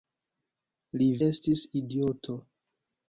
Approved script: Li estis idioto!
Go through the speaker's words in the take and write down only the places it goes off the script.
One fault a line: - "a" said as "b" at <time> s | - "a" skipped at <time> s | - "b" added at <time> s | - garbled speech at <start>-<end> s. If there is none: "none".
none